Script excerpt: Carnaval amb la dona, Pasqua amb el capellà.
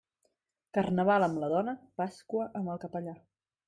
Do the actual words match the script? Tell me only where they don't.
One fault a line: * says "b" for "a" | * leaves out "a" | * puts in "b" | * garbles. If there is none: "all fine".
all fine